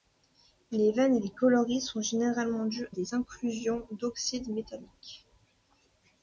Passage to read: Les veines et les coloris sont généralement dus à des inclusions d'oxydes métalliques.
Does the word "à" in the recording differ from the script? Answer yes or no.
yes